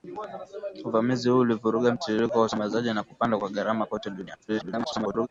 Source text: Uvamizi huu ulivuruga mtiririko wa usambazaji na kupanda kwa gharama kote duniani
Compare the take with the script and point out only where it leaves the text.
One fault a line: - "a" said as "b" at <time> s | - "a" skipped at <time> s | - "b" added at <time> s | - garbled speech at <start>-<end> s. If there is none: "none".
- garbled speech at 4.5-5.3 s